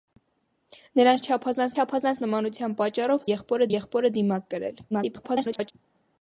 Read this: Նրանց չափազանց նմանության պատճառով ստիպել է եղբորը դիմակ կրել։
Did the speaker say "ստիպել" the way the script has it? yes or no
no